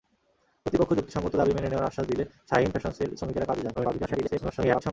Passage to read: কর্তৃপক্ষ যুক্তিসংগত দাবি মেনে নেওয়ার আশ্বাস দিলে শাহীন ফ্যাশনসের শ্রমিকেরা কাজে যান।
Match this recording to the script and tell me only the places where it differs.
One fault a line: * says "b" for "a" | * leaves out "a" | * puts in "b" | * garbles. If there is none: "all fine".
* garbles